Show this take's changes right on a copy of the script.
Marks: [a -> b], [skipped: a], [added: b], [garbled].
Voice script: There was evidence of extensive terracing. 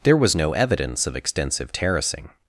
There was [added: no] evidence of extensive terracing.